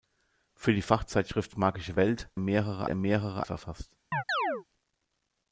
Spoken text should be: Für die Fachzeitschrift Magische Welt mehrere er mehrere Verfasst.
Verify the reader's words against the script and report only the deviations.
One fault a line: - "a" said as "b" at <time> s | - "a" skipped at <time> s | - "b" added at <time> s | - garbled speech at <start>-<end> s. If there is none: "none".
none